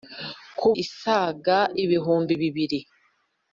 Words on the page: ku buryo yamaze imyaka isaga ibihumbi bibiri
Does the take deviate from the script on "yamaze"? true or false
true